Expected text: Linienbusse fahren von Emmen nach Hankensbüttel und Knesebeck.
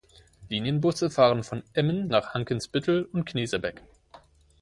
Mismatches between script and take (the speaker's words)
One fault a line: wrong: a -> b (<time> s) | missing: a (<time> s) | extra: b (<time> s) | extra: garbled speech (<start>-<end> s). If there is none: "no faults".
no faults